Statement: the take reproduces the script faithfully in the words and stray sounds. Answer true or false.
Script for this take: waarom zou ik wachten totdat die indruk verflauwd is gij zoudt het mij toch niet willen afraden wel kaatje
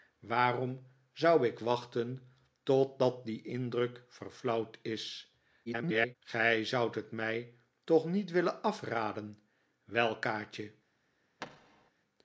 false